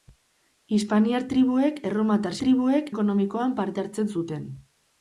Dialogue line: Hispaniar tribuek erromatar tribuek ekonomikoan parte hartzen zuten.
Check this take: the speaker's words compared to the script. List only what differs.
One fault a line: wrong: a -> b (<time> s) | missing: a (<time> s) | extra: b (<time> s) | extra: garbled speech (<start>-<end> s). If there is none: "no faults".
no faults